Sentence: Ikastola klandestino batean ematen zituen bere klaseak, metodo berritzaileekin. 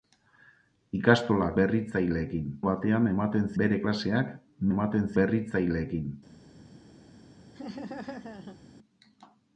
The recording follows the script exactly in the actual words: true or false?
false